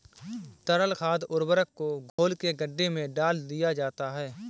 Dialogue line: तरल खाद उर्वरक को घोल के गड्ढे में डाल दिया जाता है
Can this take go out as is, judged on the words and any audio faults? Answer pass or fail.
fail